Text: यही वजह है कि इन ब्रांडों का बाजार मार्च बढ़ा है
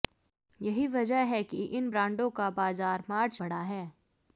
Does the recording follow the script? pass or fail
pass